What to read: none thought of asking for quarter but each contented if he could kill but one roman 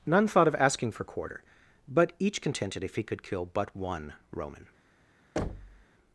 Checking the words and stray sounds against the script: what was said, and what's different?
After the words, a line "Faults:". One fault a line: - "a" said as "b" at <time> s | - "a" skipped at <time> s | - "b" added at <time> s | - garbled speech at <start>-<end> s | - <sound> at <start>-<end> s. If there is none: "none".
none thought of asking for quarter but each contented if he could kill but one roman
Faults:
- thud at 5.4-5.9 s